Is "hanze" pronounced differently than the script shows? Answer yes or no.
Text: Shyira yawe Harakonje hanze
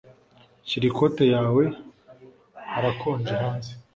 no